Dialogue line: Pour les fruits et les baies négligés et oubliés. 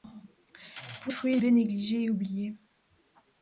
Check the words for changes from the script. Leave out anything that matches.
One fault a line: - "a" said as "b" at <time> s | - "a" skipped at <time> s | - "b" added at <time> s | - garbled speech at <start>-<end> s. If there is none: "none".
- "les" skipped at 1.1 s
- "les" skipped at 1.4 s